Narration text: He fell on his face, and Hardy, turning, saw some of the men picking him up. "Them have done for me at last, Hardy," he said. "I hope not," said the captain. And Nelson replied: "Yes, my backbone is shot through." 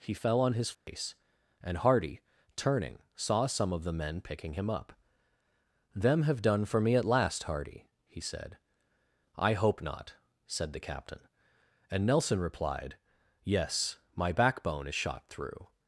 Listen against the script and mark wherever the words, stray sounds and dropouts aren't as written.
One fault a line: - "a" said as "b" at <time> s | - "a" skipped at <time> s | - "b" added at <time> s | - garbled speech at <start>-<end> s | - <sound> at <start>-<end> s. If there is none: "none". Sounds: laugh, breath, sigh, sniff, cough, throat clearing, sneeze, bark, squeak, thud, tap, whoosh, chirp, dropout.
- dropout at 0.7-0.9 s